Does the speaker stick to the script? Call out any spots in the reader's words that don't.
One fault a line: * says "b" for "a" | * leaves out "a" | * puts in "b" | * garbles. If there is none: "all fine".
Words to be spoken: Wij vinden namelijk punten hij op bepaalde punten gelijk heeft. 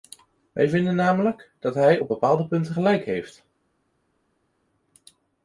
* says "dat" for "punten"